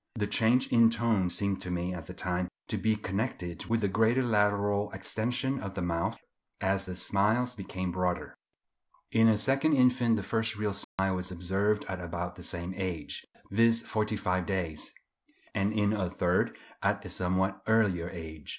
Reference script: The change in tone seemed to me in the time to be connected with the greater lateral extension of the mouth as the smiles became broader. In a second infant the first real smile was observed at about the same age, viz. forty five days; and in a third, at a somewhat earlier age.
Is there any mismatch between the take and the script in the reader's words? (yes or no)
yes